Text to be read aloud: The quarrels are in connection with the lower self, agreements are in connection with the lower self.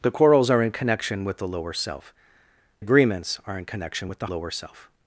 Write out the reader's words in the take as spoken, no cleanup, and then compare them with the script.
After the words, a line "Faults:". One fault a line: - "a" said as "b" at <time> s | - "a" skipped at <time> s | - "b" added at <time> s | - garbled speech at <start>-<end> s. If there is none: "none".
The quarrels are in connection with the lower self, agreements are in connection with the lower self.
Faults:
none